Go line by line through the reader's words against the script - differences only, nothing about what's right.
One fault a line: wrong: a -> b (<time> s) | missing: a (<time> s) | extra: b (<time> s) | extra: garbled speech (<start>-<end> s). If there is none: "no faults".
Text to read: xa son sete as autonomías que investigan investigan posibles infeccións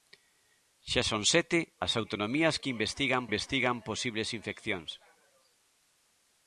no faults